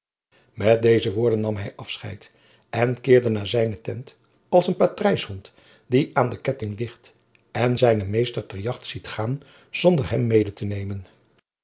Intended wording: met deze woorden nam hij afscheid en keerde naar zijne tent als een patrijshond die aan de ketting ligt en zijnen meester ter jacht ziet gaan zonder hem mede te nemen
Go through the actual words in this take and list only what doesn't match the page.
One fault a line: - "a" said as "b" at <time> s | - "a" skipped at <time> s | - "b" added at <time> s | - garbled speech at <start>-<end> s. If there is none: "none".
none